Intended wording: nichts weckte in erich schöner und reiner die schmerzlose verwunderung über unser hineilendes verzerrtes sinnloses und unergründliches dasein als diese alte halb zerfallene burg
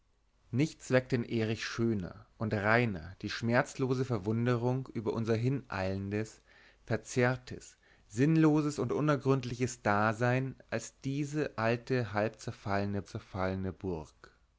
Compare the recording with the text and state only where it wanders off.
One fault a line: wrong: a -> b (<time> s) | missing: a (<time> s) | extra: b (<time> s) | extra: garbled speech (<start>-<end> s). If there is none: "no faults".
extra: zerfallene (13.1 s)